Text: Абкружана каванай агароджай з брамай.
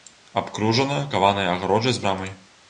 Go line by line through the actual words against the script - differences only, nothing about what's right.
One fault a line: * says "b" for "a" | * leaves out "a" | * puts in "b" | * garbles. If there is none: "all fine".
all fine